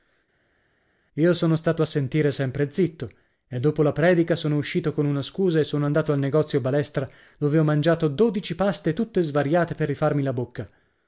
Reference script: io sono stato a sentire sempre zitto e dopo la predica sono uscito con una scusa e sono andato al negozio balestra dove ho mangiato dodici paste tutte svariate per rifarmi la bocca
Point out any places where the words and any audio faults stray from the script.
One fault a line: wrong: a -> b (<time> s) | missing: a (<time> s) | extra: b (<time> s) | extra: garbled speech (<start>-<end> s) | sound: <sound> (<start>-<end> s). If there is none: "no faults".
no faults